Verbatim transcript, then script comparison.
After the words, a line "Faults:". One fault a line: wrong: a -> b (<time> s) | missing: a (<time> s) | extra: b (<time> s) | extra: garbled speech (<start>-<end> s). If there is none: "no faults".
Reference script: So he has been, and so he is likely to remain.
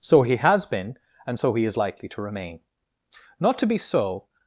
So he has been, and so he is likely to remain. Not to be so
Faults:
extra: Not to be so (3.4 s)